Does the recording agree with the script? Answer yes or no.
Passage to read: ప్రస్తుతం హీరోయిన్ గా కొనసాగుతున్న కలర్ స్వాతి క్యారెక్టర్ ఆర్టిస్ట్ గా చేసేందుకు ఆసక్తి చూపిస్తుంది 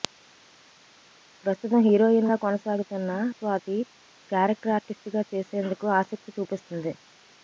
no